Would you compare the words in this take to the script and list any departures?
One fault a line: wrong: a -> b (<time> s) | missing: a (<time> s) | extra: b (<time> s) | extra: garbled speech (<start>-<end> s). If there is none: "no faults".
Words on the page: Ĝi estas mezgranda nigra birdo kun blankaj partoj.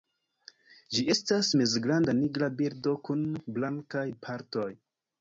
no faults